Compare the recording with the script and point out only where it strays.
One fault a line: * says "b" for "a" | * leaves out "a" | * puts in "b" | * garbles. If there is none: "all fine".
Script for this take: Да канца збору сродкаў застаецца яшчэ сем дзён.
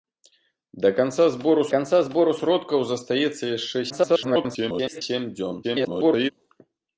* puts in "канца збору"
* garbles
* garbles